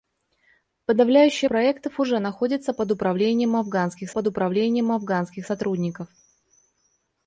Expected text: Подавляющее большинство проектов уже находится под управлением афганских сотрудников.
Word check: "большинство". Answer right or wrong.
wrong